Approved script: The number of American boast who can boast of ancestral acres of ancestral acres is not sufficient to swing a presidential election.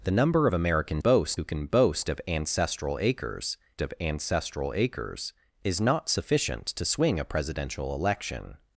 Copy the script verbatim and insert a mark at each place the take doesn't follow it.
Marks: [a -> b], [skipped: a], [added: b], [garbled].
The number of American boast who can boast of ancestral acres of ancestral acres is not sufficient to swing a presidential election.